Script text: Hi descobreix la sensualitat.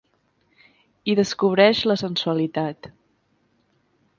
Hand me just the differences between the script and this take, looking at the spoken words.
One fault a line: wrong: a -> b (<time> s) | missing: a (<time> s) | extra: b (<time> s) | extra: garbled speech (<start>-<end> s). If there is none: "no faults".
no faults